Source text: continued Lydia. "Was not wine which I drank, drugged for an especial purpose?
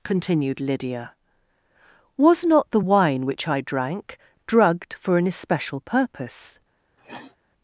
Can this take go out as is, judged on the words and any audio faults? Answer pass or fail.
fail